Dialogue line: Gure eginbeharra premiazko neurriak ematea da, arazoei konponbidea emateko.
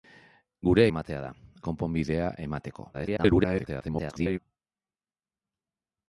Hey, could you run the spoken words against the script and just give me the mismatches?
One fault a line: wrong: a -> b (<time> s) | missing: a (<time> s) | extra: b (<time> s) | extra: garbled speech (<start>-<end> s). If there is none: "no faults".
missing: eginbeharra premiazko neurriak (0.8 s)
missing: arazoei (1.3 s)
extra: garbled speech (2.9-4.4 s)